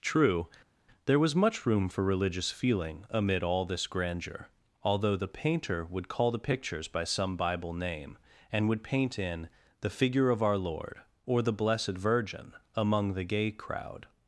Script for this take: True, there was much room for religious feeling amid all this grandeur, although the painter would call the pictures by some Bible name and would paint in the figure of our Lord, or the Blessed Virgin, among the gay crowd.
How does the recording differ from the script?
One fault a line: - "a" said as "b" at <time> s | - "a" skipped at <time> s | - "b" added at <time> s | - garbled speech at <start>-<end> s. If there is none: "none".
none